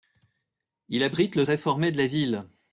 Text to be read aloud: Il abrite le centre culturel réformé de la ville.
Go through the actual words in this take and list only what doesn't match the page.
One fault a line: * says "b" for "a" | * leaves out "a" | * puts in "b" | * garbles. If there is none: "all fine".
* leaves out "centre culturel"